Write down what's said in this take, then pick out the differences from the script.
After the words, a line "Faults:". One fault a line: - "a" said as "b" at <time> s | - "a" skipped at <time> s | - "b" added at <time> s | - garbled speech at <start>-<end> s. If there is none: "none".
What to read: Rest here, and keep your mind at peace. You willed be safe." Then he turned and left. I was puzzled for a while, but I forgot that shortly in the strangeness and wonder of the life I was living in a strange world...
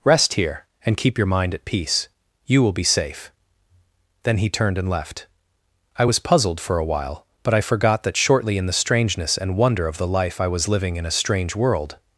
Rest here, and keep your mind at peace. You will be safe." Then he turned and left. I was puzzled for a while, but I forgot that shortly in the strangeness and wonder of the life I was living in a strange world...
Faults:
- "willed" said as "will" at 2.6 s